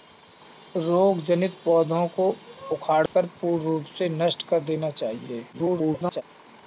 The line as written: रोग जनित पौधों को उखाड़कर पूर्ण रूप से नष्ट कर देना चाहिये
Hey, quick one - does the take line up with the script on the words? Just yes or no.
no